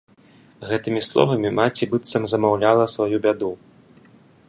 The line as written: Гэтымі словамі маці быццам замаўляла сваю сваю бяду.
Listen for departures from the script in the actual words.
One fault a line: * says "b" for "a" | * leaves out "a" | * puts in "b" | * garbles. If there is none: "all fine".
* leaves out "сваю"